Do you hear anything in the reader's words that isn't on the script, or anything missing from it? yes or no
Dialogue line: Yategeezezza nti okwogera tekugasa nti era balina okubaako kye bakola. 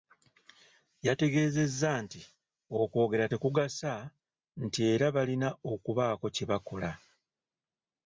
no